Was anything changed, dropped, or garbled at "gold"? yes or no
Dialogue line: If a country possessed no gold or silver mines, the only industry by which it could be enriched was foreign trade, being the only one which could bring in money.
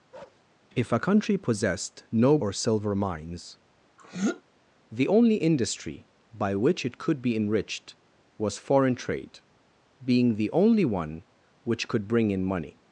yes